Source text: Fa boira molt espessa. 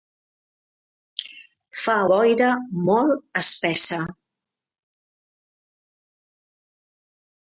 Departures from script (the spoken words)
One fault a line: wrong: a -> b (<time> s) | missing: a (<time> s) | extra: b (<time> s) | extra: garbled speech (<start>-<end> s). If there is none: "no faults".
no faults